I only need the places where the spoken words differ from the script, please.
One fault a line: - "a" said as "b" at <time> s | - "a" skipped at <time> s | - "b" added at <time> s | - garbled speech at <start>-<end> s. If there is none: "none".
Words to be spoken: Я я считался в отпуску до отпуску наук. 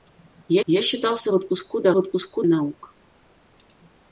none